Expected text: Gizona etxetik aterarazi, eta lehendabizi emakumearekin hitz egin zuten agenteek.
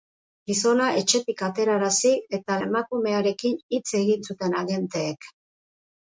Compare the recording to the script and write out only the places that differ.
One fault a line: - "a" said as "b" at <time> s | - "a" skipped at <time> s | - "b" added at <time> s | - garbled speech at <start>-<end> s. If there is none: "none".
- "lehendabizi" skipped at 2.5 s